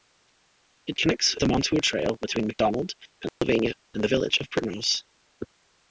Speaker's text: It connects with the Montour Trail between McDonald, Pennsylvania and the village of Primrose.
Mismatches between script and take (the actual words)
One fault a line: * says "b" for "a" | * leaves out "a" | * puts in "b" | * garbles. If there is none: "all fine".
* leaves out "with"